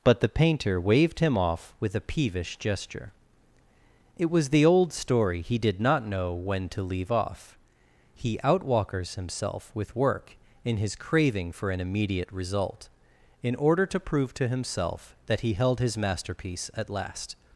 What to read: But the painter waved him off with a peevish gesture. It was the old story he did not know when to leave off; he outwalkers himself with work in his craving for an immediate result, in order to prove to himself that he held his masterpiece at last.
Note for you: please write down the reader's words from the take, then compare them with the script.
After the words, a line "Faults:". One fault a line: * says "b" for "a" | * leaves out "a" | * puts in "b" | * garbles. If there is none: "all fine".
But the painter waved him off with a peevish gesture. It was the old story he did not know when to leave off; he outwalkers himself with work in his craving for an immediate result, in order to prove to himself that he held his masterpiece at last.
Faults:
all fine